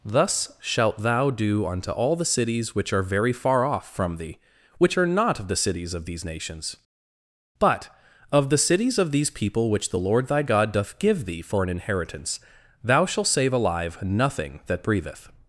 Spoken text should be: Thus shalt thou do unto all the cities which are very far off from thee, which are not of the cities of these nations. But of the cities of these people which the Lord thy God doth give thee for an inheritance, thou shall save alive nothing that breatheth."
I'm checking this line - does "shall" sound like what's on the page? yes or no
no